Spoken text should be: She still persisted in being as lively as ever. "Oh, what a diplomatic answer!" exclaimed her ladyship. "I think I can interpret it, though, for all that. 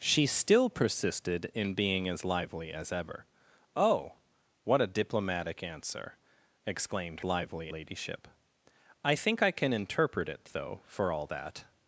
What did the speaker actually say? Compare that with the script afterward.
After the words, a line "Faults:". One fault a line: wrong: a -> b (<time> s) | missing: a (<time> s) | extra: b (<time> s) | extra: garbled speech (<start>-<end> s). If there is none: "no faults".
She still persisted in being as lively as ever. "Oh, what a diplomatic answer!" exclaimed lively ladyship. "I think I can interpret it, though, for all that.
Faults:
wrong: her -> lively (7.2 s)